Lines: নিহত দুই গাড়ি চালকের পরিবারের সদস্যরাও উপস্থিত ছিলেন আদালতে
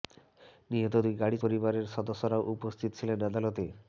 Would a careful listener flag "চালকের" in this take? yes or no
yes